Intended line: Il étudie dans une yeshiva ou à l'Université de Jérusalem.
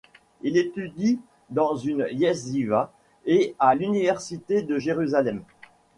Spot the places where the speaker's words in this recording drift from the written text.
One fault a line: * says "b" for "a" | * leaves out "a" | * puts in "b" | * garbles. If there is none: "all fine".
* says "et" for "ou"